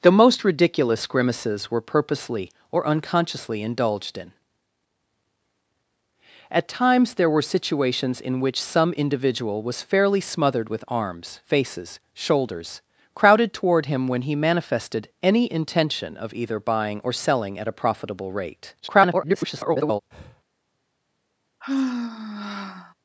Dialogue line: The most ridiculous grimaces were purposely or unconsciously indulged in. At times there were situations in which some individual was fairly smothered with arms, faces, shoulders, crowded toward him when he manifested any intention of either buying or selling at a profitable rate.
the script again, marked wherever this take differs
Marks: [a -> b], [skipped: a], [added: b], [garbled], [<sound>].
The most ridiculous grimaces were purposely or unconsciously indulged in. At times there were situations in which some individual was fairly smothered with arms, faces, shoulders, crowded toward him when he manifested any intention of either buying or selling at a profitable rate. [garbled] [breath] [sigh]